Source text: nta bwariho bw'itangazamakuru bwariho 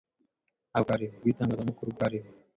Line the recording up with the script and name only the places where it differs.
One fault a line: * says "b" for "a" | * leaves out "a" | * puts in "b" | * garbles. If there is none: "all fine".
all fine